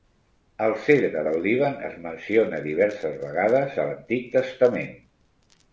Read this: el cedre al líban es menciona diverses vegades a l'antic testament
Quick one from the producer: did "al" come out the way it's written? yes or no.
no